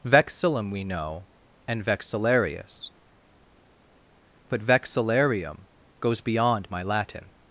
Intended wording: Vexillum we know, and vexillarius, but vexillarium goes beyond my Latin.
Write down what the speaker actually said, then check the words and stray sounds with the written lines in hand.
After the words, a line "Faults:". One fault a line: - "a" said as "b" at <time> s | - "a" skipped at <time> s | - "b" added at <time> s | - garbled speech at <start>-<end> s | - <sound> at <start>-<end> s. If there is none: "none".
Vexillum we know, and vexillarius, but vexillarium goes beyond my Latin.
Faults:
none